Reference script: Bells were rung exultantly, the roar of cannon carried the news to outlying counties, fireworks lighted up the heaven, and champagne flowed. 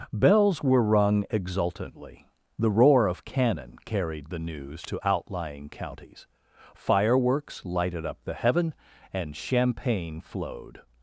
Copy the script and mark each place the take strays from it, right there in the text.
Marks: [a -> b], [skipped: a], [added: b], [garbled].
Bells were rung exultantly, the roar of cannon carried the news to outlying counties, fireworks lighted up the heaven, and champagne flowed.